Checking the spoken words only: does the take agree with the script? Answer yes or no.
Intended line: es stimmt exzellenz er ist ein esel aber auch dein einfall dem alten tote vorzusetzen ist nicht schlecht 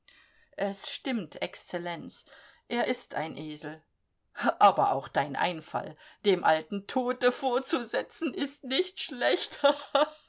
yes